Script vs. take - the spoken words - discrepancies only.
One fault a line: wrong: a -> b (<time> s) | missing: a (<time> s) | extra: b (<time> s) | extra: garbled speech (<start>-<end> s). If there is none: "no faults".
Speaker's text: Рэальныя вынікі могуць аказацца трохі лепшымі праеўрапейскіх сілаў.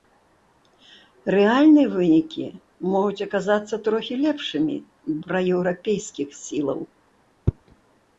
no faults